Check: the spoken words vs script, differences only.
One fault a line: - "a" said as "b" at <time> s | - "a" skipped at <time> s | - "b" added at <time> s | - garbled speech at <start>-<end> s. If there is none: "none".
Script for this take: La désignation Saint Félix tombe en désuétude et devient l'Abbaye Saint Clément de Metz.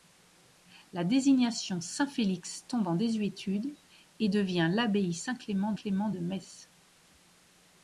- "Clément" added at 5.7 s